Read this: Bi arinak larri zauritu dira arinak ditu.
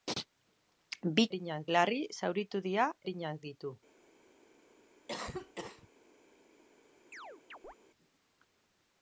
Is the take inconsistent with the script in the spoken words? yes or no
no